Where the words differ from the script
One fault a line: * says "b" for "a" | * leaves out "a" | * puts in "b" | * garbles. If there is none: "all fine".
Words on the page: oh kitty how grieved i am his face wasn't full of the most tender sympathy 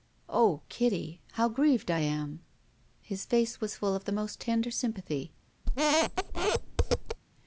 * says "was" for "wasn't"